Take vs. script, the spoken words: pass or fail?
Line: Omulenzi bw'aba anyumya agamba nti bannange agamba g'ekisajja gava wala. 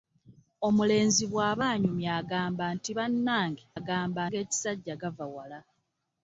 pass